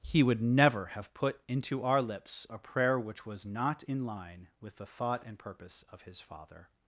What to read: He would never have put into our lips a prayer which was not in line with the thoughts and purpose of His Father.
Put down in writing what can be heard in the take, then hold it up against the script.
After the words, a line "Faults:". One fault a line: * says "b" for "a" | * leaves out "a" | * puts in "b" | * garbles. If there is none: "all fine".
He would never have put into our lips a prayer which was not in line with the thought and purpose of His Father.
Faults:
* says "thought" for "thoughts"